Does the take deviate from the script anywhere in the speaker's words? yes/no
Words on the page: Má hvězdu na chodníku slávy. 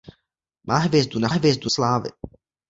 yes